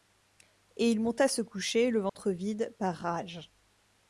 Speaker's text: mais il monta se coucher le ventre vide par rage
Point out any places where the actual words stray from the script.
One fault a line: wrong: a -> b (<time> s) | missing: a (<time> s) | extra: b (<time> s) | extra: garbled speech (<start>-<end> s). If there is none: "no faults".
wrong: mais -> et (0.8 s)